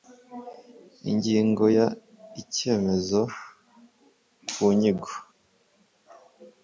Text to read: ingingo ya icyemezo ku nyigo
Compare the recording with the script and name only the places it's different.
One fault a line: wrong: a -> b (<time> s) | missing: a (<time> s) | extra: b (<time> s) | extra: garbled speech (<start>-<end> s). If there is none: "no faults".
no faults